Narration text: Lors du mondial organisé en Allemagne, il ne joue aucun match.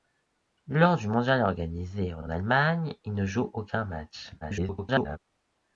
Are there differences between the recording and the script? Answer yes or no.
yes